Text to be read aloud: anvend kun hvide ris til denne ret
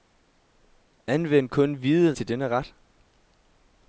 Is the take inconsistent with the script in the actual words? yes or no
yes